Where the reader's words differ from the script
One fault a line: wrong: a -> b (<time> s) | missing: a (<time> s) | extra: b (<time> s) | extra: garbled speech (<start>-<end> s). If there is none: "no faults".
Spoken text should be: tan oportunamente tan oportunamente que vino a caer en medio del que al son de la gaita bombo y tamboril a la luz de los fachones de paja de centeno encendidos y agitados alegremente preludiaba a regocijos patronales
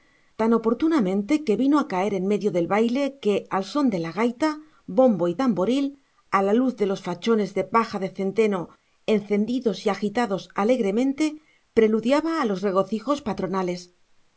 missing: tan oportunamente (1.3 s)
extra: baile (2.8 s)
extra: los (12.5 s)